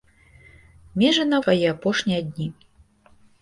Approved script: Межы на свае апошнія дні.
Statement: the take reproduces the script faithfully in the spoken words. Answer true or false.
true